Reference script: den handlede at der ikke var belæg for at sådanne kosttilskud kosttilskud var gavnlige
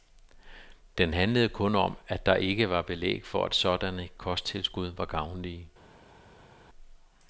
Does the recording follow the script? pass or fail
fail